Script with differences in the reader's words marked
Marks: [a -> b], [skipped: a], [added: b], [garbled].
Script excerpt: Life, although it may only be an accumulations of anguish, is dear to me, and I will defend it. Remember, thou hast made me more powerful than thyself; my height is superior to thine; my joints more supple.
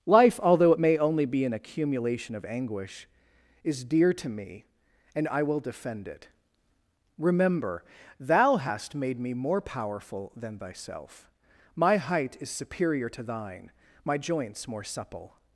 Life, although it may only be an [accumulations -> accumulation] of anguish, is dear to me, and I will defend it. Remember, thou hast made me more powerful than thyself; my height is superior to thine; my joints more supple.